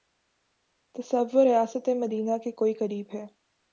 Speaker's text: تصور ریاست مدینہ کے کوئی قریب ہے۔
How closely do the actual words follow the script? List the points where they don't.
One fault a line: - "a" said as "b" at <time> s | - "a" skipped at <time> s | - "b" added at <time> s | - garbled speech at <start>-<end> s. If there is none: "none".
none